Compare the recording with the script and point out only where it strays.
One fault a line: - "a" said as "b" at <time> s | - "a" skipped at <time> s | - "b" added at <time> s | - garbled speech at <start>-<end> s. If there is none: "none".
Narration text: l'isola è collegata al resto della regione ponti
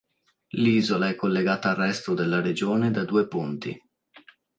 - "da due" added at 2.9 s